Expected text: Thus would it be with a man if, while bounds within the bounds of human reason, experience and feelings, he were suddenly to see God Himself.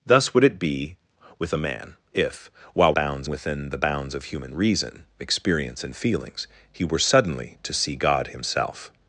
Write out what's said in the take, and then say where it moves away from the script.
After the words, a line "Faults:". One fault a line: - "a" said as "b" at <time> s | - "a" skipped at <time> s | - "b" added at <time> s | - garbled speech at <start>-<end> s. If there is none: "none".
Thus would it be with a man if, while bounds within the bounds of human reason, experience and feelings, he were suddenly to see God Himself.
Faults:
none